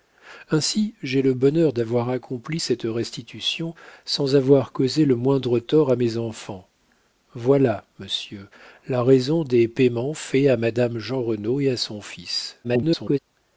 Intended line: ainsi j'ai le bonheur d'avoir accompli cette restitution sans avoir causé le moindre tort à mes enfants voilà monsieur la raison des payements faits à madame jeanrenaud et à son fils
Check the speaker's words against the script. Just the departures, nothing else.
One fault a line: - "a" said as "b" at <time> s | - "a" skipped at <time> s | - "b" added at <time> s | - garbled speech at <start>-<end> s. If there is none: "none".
- garbled speech at 12.6-13.2 s